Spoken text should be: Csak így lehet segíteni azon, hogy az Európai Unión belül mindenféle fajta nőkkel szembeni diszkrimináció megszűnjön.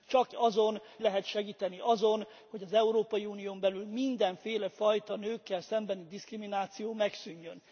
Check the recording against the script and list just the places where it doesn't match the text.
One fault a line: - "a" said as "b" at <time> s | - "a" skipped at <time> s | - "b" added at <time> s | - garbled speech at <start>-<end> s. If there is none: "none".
- "így" said as "azon" at 0.3 s